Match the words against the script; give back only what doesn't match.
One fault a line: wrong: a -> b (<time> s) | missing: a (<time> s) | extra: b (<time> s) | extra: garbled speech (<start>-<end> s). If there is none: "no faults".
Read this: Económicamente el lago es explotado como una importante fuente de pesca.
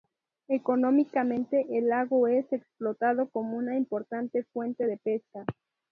no faults